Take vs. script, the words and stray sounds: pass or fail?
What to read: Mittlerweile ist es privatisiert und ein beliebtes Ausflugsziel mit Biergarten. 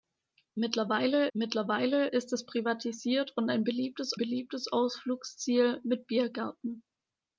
fail